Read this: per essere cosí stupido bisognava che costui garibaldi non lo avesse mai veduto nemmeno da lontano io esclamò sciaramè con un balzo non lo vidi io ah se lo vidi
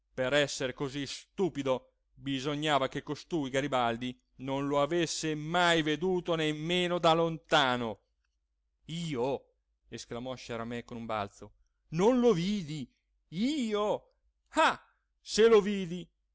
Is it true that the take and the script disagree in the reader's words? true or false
false